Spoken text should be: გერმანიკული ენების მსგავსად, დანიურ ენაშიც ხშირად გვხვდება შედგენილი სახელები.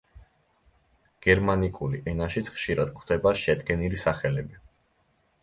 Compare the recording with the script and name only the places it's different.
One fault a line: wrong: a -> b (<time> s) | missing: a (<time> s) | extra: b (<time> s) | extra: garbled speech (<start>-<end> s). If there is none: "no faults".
missing: ენების მსგავსად დანიურ (2.0 s)